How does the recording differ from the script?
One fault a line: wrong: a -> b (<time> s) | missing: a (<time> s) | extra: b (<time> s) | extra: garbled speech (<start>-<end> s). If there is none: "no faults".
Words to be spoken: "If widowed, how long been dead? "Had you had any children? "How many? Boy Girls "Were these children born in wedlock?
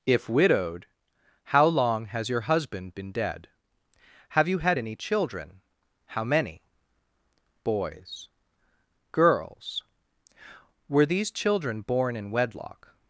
extra: has your husband (2.0 s)
wrong: Had -> Have (4.3 s)
wrong: Boy -> Boys (7.6 s)